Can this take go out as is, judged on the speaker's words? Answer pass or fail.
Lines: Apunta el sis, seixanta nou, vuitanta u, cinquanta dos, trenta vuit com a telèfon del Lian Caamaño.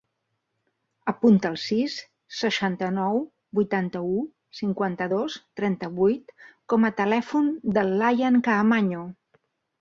pass